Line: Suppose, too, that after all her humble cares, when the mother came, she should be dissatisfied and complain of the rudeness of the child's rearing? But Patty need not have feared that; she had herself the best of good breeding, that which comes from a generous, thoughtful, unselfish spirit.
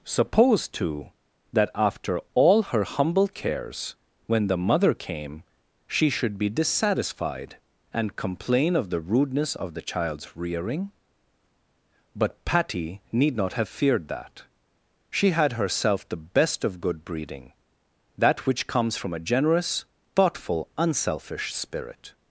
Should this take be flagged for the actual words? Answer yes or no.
no